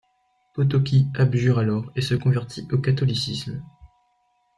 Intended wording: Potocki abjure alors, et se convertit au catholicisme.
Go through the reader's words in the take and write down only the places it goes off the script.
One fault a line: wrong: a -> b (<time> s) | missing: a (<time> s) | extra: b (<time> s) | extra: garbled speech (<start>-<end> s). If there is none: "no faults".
no faults